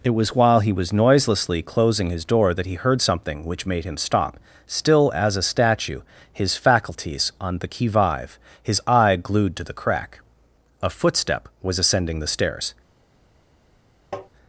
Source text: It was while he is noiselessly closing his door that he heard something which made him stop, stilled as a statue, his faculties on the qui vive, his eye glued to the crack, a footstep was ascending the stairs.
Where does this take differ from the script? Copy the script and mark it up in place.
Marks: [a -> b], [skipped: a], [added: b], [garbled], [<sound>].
It was while he [is -> was] noiselessly closing his door that he heard something which made him stop, [stilled -> still] as a statue, his faculties on the qui vive, his eye glued to the crack, a footstep was ascending the stairs. [tap]